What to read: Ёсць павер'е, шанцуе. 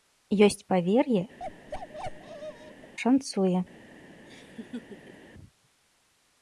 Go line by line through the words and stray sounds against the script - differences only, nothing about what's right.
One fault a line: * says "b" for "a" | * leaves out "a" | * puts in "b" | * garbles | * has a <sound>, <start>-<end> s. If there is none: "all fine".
* has a bark, 1.4-2.9 s
* has a laugh, 4.3-5.3 s